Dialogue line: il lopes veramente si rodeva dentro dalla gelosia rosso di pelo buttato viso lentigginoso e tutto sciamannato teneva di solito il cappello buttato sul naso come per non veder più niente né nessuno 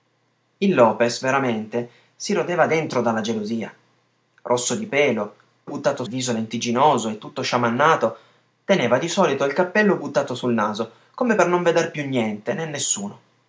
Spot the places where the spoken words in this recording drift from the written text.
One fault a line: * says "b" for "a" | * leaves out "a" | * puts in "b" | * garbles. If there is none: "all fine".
all fine